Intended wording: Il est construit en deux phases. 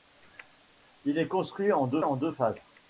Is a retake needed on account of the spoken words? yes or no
yes